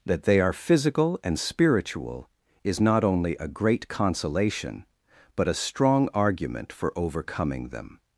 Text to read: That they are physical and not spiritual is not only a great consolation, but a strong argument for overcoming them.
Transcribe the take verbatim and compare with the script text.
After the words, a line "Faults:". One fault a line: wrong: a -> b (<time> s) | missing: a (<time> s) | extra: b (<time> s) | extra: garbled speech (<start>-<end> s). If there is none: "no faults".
That they are physical and spiritual is not only a great consolation, but a strong argument for overcoming them.
Faults:
missing: not (1.4 s)